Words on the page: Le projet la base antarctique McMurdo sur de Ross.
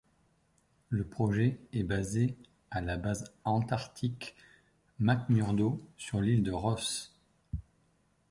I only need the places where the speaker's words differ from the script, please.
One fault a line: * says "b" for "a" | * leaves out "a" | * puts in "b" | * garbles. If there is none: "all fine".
* puts in "est basé à"
* puts in "l'île"